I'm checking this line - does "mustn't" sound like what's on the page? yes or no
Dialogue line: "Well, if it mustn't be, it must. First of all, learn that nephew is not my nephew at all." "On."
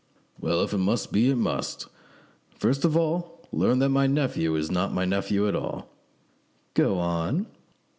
no